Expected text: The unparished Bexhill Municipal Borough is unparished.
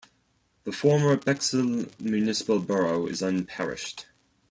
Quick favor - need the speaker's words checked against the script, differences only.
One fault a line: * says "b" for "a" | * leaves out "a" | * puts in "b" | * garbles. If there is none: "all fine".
* says "former" for "unparished"